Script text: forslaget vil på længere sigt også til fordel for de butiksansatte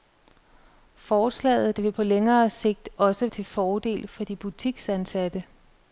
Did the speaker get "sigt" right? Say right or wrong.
right